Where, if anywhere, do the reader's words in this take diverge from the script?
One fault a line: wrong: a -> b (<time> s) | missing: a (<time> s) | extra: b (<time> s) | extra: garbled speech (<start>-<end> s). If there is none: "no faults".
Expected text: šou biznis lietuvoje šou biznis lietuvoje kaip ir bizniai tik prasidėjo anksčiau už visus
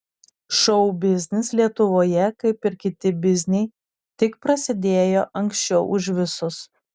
missing: šou biznis lietuvoje (2.3 s)
extra: kiti (2.8 s)